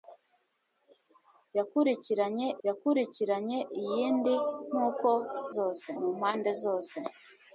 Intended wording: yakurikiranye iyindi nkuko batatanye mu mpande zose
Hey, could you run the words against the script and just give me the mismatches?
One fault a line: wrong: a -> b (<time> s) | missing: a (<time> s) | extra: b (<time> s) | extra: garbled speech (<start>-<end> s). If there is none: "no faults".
extra: yakurikiranye (2.7 s)
wrong: batatanye -> zose (5.5 s)